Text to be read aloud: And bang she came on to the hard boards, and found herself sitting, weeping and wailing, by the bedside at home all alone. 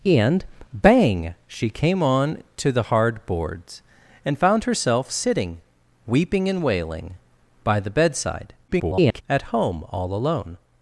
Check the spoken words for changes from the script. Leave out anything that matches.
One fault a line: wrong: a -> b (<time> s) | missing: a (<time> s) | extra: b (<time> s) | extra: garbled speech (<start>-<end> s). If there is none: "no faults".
extra: garbled speech (8.7-9.2 s)